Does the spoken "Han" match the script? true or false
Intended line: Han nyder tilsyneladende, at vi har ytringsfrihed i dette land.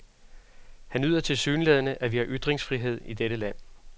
true